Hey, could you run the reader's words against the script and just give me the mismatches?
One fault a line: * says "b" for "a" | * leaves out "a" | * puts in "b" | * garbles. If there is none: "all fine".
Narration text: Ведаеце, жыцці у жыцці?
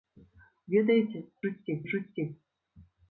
all fine